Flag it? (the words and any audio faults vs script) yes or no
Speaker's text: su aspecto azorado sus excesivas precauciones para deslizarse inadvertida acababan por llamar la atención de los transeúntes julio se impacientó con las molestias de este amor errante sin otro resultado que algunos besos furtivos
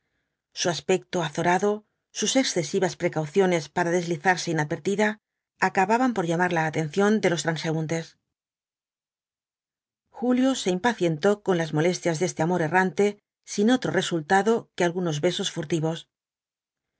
no